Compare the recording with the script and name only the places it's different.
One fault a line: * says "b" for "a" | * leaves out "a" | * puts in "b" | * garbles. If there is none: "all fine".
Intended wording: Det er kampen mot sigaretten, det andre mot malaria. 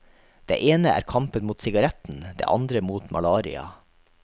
* puts in "ene"